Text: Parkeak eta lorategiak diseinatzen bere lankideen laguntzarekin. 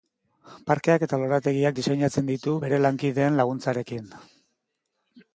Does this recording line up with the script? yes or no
no